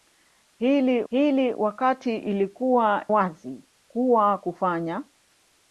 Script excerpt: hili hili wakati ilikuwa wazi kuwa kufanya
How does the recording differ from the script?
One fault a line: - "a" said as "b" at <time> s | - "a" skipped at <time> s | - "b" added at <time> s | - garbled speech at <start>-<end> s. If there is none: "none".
none